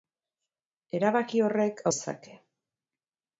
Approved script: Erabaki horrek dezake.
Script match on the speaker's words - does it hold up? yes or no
yes